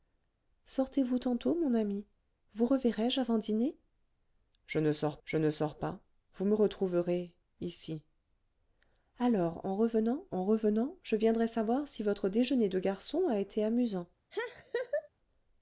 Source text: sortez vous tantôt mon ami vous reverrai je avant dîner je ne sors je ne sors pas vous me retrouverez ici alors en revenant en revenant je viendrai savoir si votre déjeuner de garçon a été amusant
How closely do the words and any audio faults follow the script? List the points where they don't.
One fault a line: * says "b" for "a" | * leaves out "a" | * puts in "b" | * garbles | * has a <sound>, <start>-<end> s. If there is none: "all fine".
* has a laugh, 14.3-15.1 s